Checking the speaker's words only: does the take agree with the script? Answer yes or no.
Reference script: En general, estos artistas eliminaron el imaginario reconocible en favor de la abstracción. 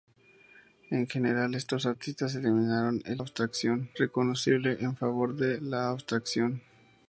no